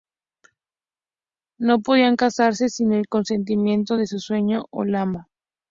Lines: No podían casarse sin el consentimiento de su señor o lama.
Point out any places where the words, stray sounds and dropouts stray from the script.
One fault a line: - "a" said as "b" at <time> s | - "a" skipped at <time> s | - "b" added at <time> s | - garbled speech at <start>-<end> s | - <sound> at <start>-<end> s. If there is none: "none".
none